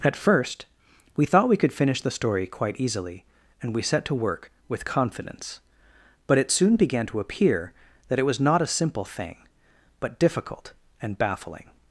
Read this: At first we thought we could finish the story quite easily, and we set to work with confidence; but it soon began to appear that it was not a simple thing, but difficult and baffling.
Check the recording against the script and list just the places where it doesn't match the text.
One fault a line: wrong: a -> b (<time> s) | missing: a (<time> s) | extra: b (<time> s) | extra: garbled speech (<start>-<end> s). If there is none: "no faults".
no faults